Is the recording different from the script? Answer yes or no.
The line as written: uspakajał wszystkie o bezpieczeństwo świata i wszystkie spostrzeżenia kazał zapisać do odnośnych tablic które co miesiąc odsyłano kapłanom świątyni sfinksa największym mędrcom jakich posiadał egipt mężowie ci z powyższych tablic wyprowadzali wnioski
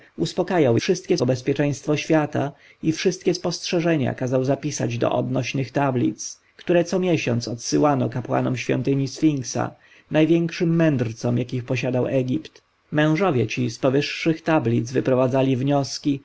no